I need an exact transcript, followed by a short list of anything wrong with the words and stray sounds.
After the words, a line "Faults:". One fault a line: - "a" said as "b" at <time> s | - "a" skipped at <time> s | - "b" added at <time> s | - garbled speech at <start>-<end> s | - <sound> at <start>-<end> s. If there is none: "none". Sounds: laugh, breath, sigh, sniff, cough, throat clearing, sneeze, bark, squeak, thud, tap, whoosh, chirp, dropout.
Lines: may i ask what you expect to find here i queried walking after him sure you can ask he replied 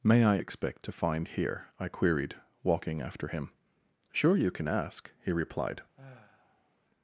may i expect to find here i queried walking after him sure you can ask he replied
Faults:
- "ask what you" skipped at 0.4 s
- sigh at 6.0-6.8 s